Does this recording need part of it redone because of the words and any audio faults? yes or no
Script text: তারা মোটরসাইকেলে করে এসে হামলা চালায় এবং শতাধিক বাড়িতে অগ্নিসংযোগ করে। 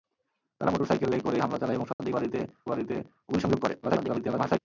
yes